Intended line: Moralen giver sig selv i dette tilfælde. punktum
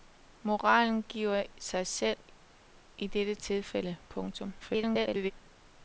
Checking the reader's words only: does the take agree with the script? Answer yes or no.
no